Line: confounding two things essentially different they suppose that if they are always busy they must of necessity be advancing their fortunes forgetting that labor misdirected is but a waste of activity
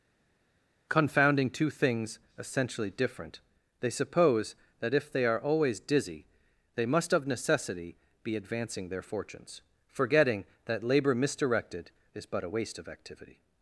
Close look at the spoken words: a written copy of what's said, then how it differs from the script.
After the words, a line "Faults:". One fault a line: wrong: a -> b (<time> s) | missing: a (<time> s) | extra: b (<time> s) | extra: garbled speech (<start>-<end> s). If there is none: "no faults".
confounding two things essentially different they suppose that if they are always dizzy they must of necessity be advancing their fortunes forgetting that labor misdirected is but a waste of activity
Faults:
wrong: busy -> dizzy (5.8 s)